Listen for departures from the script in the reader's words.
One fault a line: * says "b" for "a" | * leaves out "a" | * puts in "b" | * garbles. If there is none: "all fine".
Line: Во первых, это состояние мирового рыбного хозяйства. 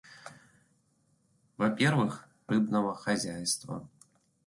* leaves out "это состояние мирового"